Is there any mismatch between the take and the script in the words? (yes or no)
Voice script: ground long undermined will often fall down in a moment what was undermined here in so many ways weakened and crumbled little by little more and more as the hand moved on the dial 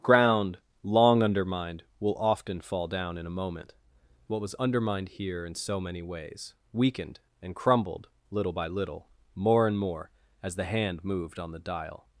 no